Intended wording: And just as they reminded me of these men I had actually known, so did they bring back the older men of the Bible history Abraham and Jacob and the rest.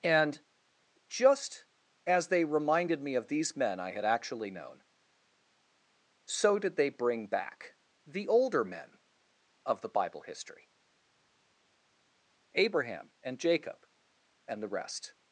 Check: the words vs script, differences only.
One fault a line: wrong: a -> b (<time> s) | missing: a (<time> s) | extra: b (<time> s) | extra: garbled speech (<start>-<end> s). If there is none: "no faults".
no faults